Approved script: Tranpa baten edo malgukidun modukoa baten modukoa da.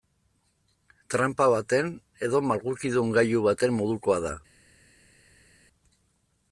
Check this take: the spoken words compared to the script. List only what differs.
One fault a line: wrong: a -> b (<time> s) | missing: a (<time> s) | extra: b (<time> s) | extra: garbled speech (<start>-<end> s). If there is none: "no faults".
wrong: modukoa -> gailu (3.2 s)